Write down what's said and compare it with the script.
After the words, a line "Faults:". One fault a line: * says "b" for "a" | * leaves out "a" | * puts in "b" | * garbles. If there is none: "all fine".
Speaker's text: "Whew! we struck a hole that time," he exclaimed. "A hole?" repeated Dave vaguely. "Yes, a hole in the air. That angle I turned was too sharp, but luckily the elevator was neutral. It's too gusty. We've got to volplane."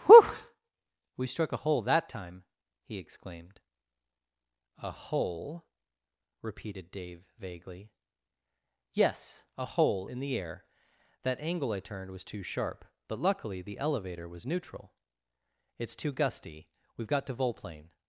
"Whew! we struck a hole that time," he exclaimed. "A hole?" repeated Dave vaguely. "Yes, a hole in the air. That angle I turned was too sharp, but luckily the elevator was neutral. It's too gusty. We've got to volplane."
Faults:
all fine